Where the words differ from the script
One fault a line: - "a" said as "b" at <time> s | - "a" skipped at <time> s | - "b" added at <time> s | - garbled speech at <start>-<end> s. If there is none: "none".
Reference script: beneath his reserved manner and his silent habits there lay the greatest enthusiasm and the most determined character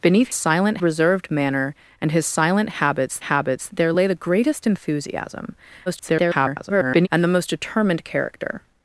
- "his" said as "silent" at 0.3 s
- "habits" added at 3.2 s
- garbled speech at 5.9-7.1 s